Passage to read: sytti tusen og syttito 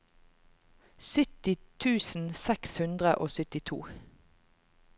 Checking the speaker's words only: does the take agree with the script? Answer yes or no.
no